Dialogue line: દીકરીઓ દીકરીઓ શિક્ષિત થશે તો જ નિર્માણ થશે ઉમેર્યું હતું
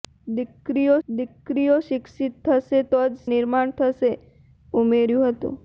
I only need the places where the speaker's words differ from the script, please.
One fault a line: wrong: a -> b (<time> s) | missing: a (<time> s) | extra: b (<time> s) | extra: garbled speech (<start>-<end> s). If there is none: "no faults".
no faults